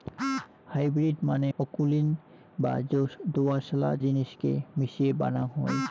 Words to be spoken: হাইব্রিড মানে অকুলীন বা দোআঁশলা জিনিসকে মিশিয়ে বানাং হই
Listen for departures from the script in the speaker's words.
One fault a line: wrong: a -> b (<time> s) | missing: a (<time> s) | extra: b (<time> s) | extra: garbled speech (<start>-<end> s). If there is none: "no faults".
no faults